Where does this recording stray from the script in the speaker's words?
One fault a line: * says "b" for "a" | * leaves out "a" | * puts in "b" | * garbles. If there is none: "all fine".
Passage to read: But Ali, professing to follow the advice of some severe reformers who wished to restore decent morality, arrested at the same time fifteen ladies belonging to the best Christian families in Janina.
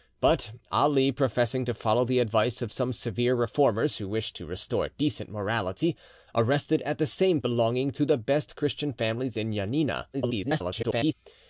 * leaves out "time fifteen ladies"
* garbles